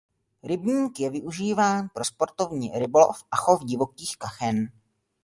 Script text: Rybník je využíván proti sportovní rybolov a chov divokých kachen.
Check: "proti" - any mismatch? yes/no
yes